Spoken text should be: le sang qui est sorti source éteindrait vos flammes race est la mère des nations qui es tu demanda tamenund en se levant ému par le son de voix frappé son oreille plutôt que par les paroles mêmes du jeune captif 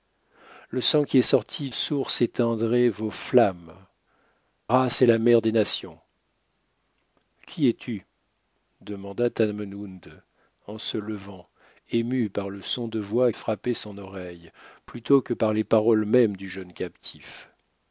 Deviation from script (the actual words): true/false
false